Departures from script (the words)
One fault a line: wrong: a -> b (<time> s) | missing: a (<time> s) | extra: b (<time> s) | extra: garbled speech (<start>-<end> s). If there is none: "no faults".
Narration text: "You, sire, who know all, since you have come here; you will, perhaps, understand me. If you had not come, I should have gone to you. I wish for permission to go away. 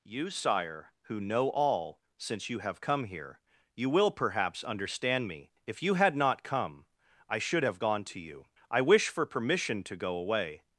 no faults